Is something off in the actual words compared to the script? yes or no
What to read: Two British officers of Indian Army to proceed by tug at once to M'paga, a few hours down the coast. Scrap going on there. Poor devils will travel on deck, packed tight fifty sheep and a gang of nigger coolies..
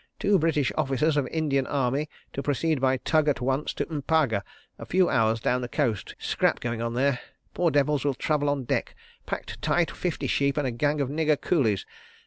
no